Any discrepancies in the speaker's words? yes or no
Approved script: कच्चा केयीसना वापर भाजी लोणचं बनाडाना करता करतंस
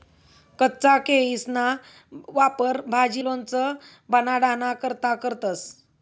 no